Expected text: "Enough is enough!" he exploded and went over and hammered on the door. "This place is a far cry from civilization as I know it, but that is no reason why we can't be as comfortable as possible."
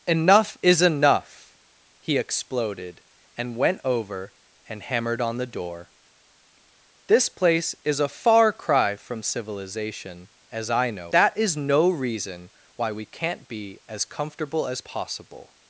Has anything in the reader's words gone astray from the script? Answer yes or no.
yes